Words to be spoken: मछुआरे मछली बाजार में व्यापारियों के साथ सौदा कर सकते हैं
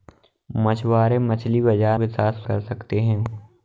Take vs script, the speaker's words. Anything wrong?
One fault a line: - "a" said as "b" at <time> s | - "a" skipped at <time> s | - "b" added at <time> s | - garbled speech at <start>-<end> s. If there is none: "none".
- "में व्यापारियों" skipped at 2.0 s
- "सौदा" skipped at 2.4 s